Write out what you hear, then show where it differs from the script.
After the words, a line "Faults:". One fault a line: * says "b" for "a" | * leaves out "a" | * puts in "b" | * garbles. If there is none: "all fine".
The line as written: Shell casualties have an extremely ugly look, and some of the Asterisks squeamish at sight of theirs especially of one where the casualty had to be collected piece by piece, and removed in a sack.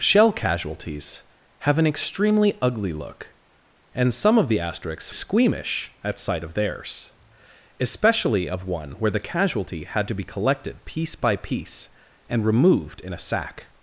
Shell casualties have an extremely ugly look, and some of the Asterisks squeamish at sight of theirs especially of one where the casualty had to be collected piece by piece, and removed in a sack.
Faults:
all fine